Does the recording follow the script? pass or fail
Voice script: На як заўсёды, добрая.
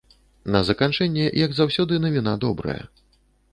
fail